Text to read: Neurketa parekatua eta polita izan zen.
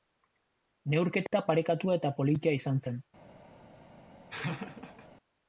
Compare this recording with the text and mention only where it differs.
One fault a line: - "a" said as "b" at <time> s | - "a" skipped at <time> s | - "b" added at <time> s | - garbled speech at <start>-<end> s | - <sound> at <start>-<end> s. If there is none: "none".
- laugh at 4.3-5.1 s